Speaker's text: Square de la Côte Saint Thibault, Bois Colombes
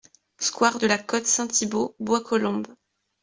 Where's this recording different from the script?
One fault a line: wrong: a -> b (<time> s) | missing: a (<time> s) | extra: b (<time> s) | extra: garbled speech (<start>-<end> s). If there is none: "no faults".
no faults